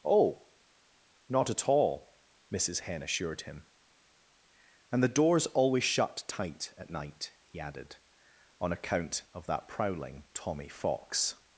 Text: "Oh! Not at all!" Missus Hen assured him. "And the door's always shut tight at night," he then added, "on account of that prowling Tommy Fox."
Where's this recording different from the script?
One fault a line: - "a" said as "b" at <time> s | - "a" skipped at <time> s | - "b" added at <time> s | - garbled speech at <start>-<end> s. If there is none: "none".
- "then" skipped at 7.6 s